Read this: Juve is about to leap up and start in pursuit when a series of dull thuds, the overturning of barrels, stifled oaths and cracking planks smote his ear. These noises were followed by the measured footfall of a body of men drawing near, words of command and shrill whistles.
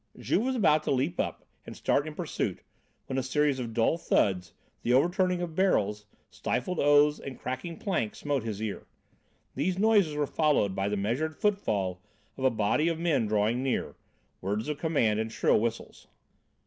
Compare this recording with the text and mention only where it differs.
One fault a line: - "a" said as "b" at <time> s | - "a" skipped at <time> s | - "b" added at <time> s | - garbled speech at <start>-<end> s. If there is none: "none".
- "is" said as "was" at 0.4 s